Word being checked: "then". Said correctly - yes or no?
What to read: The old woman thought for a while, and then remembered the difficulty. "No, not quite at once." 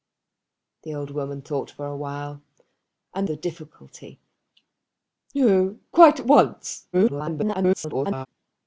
no